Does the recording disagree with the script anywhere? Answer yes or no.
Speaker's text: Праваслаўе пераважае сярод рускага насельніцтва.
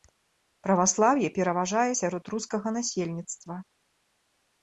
no